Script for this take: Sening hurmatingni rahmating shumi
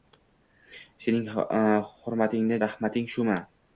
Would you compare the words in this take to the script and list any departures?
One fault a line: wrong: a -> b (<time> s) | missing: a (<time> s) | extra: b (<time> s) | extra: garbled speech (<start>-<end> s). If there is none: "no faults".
no faults